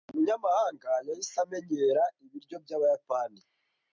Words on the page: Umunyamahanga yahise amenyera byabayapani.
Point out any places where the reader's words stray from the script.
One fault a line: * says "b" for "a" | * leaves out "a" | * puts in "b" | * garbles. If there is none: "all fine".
* puts in "ibiryo"